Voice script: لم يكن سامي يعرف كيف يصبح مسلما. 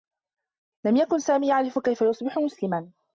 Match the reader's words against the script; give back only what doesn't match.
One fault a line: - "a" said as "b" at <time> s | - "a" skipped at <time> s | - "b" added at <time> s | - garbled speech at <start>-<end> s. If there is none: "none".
none